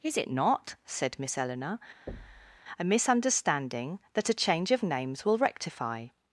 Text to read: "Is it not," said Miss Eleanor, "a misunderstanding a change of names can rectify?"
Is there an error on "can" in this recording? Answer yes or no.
yes